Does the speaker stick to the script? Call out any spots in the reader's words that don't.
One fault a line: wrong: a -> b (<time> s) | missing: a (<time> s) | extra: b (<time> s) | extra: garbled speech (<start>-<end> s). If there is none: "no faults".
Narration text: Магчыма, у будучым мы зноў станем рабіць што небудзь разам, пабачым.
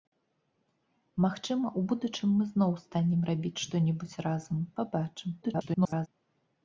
extra: garbled speech (5.4-6.1 s)